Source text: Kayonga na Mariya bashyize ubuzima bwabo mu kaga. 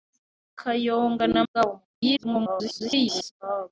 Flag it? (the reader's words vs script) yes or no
yes